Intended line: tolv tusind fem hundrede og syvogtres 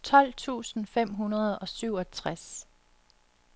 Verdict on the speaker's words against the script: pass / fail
pass